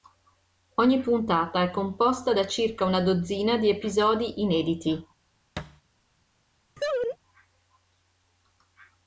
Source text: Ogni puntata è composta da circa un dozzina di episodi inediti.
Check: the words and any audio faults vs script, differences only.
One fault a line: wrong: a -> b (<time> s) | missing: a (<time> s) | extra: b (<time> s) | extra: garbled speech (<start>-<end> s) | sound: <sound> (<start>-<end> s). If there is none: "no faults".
wrong: un -> una (2.9 s)
sound: thud (5.6-5.8 s)
sound: laugh (6.8-7.2 s)